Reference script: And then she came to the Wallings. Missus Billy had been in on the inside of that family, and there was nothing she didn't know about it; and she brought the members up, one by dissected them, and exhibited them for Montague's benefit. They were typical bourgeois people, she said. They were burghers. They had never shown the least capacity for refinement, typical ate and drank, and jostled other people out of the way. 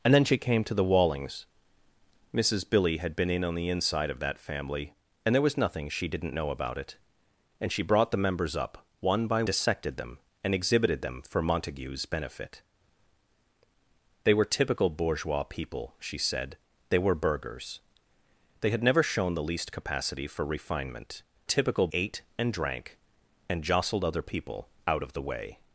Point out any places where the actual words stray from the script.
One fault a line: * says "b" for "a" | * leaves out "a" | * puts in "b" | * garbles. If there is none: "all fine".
all fine